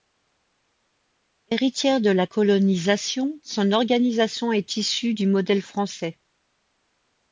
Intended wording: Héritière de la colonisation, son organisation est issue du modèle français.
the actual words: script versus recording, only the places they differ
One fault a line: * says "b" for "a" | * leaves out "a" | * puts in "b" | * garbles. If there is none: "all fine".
all fine